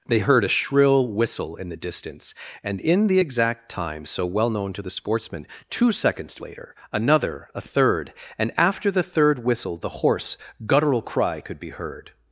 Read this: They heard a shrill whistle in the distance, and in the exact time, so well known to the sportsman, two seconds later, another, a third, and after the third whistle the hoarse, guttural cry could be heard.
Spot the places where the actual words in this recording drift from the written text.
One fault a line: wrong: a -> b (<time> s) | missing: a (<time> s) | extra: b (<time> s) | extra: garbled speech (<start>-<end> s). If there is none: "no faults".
no faults